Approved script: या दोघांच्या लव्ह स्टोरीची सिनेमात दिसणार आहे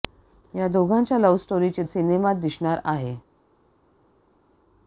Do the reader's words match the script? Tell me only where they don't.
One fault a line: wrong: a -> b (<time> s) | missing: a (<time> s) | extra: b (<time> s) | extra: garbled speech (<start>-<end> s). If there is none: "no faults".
no faults